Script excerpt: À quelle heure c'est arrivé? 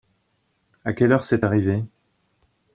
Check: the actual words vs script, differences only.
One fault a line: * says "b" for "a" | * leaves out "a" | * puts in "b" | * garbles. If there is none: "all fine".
all fine